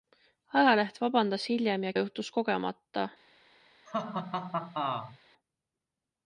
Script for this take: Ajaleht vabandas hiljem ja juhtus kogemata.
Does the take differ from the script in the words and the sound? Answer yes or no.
yes